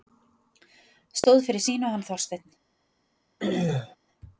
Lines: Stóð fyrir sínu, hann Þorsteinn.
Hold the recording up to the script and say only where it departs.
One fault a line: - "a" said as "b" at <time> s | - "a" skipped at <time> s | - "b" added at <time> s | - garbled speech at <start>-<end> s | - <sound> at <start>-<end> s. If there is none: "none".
- throat clearing at 3.4-4.0 s